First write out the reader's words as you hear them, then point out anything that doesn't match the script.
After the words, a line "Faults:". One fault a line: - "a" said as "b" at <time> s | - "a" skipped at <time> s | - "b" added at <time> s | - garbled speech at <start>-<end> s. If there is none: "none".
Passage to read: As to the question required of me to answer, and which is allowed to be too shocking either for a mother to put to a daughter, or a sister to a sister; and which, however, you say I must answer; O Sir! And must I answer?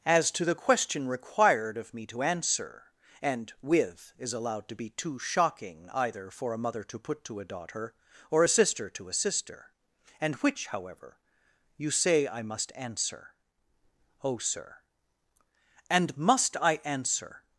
As to the question required of me to answer, and with is allowed to be too shocking either for a mother to put to a daughter, or a sister to a sister; and which, however, you say I must answer; O Sir! And must I answer?
Faults:
- "which" said as "with" at 3.6 s